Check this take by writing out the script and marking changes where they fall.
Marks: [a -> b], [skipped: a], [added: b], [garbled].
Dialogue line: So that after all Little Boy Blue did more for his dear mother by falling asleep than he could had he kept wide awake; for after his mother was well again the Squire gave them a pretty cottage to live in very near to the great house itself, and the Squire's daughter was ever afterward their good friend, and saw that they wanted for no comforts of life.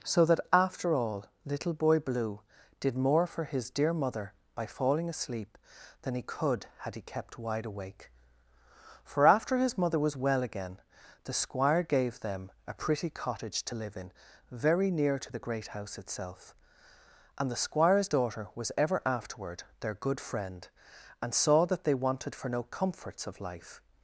So that after all Little Boy Blue did more for his dear mother by falling asleep than he could had he kept wide awake; for after his mother was well again the Squire gave them a pretty cottage to live in very near to the great house itself, and the Squire's daughter was ever afterward their good friend, and saw that they wanted for no comforts of life.